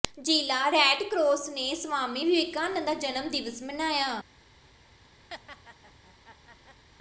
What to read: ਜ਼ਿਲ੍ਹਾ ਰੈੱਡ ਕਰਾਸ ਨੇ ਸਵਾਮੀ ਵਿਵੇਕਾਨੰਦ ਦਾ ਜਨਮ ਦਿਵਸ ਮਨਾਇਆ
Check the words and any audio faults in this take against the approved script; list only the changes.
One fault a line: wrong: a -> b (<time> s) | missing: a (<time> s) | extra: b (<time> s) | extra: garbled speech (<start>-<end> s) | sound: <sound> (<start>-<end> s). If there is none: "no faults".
sound: laugh (5.3-6.8 s)